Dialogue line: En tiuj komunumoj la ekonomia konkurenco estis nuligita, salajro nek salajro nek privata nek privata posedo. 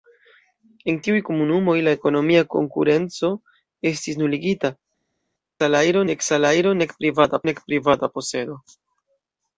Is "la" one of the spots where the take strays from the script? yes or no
no